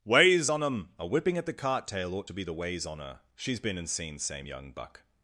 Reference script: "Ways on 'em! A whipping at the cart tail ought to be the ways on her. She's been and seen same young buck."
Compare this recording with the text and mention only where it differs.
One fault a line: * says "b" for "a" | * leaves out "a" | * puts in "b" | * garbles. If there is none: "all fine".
all fine